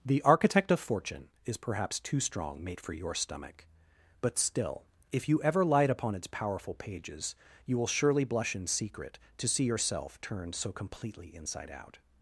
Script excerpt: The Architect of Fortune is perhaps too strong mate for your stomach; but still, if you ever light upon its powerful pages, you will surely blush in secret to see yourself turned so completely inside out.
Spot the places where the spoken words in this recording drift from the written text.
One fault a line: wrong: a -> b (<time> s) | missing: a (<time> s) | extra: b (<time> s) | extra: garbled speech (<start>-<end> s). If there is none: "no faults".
no faults